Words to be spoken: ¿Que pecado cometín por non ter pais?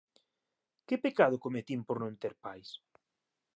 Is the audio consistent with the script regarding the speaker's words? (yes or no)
yes